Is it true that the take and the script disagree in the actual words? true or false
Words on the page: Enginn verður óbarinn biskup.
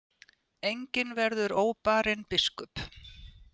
false